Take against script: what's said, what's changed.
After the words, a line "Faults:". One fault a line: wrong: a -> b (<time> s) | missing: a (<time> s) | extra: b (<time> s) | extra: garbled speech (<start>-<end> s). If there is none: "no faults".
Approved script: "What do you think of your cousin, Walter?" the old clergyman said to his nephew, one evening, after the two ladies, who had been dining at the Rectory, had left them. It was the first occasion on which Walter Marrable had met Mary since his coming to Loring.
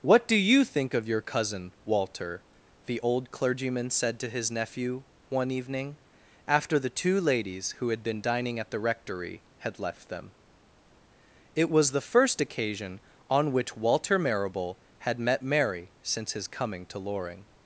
"What do you think of your cousin, Walter?" the old clergyman said to his nephew, one evening, after the two ladies, who had been dining at the Rectory, had left them. It was the first occasion on which Walter Marrable had met Mary since his coming to Loring.
Faults:
no faults